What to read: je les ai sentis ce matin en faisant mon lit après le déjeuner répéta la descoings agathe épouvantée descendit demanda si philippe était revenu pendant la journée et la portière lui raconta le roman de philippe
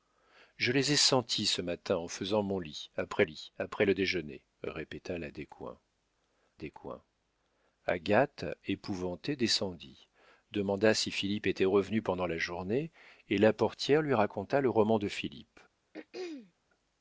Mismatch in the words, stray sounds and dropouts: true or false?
true